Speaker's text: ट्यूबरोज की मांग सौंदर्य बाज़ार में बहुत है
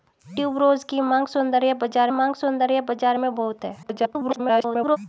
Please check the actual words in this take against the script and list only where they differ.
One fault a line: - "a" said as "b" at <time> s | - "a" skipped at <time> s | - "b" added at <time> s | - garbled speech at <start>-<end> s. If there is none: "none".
- "मांग सौंदर्य बाज़ार" added at 2.1 s
- garbled speech at 3.8-5.0 s